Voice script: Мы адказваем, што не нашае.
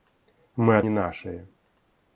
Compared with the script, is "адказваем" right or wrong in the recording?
wrong